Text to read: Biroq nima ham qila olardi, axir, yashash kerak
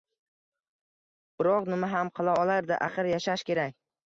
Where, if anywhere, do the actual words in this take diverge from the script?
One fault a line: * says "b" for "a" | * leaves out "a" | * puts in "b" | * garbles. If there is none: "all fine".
all fine